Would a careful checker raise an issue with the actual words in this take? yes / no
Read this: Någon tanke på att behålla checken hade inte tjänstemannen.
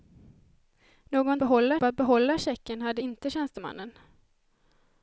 yes